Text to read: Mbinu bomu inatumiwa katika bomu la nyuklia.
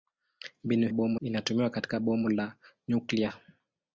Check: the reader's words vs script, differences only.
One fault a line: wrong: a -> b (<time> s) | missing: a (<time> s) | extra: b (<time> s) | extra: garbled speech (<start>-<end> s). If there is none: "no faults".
no faults